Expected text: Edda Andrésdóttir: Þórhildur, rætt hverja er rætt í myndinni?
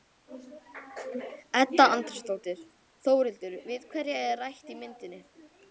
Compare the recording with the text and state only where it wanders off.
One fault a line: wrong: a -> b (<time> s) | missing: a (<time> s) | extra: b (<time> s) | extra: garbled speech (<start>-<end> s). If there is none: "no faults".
wrong: rætt -> við (3.7 s)